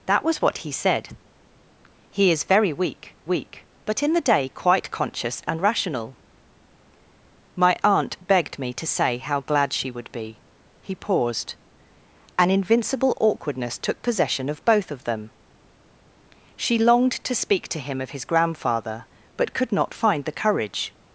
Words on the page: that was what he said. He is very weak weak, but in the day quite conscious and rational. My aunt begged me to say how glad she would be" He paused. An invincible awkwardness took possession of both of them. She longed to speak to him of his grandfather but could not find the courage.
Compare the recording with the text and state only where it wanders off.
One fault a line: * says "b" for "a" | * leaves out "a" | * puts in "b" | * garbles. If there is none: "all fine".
all fine